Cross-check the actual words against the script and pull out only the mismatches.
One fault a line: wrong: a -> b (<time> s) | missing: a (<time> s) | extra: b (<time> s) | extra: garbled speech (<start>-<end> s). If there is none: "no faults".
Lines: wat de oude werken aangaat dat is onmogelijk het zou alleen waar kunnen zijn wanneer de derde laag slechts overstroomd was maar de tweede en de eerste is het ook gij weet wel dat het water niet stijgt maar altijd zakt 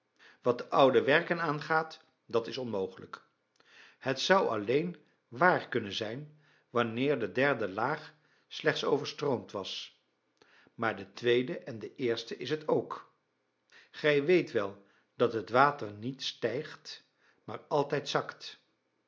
no faults